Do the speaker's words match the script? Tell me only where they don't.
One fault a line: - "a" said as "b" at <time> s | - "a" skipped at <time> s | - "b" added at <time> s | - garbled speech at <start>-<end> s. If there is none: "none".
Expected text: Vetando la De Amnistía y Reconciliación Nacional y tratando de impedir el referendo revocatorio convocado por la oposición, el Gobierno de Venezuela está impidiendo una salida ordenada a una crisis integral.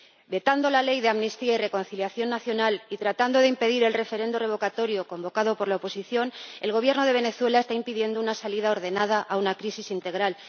- "Ley" added at 0.8 s